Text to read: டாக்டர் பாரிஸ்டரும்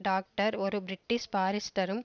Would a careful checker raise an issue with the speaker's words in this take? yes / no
yes